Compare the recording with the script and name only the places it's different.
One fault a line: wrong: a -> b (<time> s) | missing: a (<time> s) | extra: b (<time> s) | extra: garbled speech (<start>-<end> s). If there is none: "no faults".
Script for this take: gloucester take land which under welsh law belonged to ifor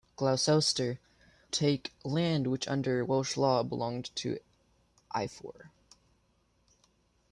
no faults